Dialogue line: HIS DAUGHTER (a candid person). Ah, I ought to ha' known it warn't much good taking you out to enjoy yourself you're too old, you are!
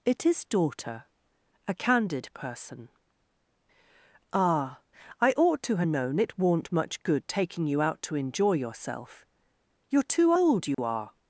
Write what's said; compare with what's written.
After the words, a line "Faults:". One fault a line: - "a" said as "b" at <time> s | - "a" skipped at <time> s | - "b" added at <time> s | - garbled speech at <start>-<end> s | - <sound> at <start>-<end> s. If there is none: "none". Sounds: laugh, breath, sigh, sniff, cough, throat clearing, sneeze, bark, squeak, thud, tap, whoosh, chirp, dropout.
It is DAUGHTER (a candid person). Ah, I ought to ha' known it warn't much good taking you out to enjoy yourself you're too old, you are!
Faults:
- "HIS" said as "It is" at 0.0 s
- dropout at 10.7-10.8 s